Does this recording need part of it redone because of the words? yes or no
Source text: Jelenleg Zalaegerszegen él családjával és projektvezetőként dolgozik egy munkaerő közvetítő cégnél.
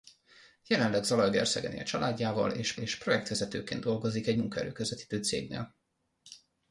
yes